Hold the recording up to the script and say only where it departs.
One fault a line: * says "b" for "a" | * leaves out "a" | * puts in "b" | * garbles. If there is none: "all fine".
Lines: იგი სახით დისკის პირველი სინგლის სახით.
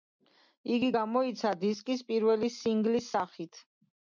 * says "გამოიცა" for "სახით"